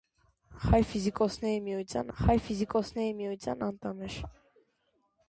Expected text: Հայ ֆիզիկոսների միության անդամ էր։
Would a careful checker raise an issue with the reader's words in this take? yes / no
yes